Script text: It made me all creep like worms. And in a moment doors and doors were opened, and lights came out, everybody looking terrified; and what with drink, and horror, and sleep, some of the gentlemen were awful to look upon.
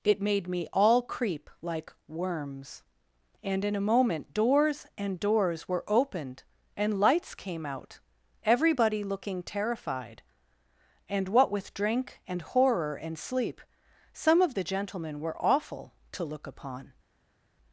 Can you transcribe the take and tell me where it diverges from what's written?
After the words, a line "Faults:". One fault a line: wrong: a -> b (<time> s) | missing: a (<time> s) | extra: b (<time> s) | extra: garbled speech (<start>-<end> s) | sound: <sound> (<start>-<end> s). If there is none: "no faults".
It made me all creep like worms. And in a moment doors and doors were opened, and lights came out, everybody looking terrified; and what with drink, and horror, and sleep, some of the gentlemen were awful to look upon.
Faults:
no faults